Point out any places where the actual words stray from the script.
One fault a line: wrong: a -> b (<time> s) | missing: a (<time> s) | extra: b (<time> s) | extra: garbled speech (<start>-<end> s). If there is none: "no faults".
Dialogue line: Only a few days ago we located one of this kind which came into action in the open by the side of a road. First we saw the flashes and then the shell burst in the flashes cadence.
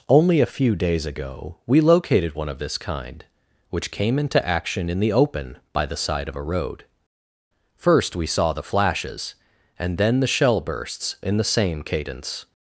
wrong: burst -> bursts (10.6 s)
wrong: flashes -> same (11.4 s)